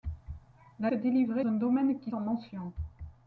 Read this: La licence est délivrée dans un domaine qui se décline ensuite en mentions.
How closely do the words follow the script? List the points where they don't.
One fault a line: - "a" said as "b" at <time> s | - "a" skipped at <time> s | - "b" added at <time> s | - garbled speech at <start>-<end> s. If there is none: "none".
- "licence" skipped at 0.9 s
- "dans" skipped at 1.4 s
- "se décline ensuite" skipped at 2.1 s